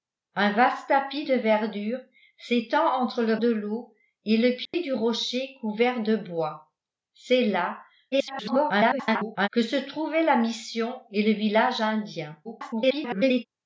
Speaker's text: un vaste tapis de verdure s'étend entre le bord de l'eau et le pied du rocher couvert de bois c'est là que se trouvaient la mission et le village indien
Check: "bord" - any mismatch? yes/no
yes